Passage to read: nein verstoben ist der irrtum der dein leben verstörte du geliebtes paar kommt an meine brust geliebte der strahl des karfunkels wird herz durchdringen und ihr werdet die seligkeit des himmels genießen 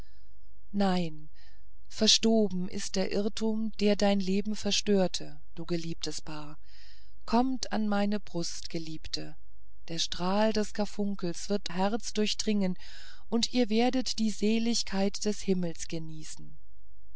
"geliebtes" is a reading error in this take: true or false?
false